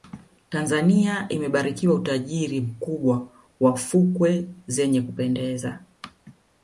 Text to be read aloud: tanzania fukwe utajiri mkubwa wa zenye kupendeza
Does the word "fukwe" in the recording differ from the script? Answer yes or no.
yes